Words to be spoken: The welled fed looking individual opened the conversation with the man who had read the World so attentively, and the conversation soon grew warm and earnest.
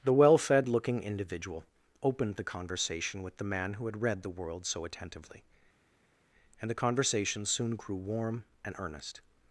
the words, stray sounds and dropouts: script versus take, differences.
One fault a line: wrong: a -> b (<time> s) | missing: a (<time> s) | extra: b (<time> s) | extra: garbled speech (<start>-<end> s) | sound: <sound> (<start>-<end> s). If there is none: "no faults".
wrong: welled -> well (0.1 s)